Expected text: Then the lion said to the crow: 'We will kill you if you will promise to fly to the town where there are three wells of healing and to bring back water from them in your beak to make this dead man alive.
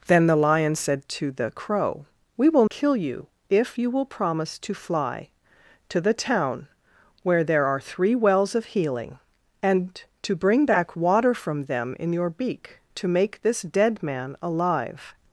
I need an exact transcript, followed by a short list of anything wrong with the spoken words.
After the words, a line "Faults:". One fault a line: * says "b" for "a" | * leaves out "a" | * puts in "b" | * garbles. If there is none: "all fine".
Then the lion said to the crow: 'We will kill you if you will promise to fly to the town where there are three wells of healing and to bring back water from them in your beak to make this dead man alive.
Faults:
all fine